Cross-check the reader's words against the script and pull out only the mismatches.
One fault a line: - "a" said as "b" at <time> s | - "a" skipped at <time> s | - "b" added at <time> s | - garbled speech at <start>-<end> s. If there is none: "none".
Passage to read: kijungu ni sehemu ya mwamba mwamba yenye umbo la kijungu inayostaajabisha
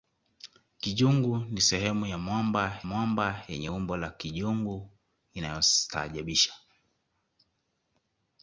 none